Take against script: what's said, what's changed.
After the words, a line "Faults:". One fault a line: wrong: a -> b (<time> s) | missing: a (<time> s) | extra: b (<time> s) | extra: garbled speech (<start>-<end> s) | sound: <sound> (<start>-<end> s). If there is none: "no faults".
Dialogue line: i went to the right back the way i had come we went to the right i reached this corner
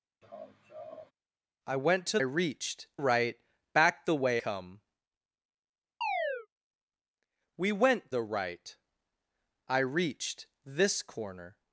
i went to reached right back the way come we went the right i reached this corner
Faults:
sound: laugh (0.2-1.1 s)
wrong: the -> reached (2.2 s)
missing: i had (4.4 s)
sound: chirp (6.0-6.5 s)
missing: to (8.1 s)